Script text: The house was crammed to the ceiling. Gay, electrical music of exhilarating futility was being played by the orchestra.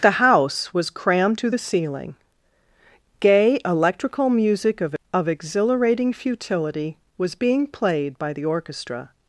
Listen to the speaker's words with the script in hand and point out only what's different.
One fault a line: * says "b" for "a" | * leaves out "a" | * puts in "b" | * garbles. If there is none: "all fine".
* puts in "of"